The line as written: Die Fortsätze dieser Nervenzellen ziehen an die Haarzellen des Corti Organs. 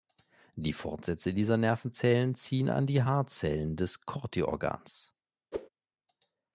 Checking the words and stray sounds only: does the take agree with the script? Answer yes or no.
no